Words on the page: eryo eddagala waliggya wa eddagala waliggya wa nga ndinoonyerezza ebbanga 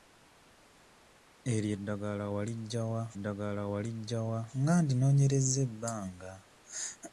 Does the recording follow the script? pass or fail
pass